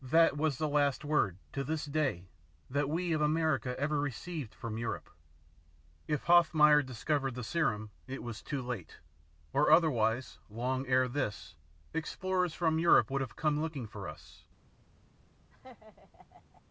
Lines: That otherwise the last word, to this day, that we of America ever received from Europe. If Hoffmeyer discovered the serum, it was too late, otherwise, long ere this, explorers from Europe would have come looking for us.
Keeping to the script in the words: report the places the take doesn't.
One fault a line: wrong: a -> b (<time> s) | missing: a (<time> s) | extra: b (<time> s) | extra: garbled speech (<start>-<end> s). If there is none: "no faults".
wrong: otherwise -> was (0.3 s)
extra: or (9.5 s)